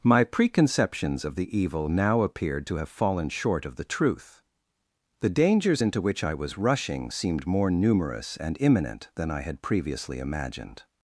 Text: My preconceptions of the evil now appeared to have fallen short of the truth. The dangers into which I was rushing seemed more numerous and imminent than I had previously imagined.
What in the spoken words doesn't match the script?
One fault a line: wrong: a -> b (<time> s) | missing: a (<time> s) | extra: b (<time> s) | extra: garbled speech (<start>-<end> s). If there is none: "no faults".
no faults